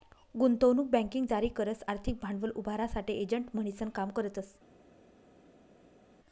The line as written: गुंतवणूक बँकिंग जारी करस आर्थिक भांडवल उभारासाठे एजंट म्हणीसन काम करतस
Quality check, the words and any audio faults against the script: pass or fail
pass